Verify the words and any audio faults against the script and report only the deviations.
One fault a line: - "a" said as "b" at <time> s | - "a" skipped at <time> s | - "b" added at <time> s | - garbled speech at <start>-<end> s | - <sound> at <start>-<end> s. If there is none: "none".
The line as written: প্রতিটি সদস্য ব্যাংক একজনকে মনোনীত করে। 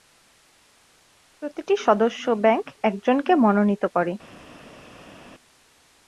none